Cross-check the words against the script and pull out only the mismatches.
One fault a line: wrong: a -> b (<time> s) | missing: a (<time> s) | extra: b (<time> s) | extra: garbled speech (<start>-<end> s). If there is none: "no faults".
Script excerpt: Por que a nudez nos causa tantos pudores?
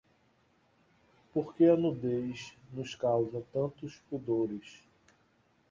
no faults